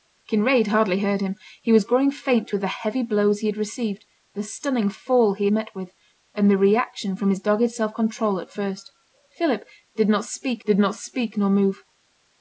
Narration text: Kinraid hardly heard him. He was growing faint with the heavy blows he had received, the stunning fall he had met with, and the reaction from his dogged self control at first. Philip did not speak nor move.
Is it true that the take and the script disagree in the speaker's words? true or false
true